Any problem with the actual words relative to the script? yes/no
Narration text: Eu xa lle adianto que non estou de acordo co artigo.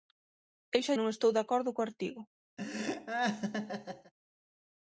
yes